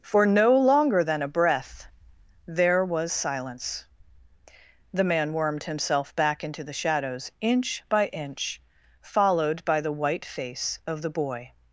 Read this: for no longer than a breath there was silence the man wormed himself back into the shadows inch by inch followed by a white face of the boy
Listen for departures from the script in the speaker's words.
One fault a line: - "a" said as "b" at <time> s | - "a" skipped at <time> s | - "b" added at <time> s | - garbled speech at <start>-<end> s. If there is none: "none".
- "a" said as "the" at 9.8 s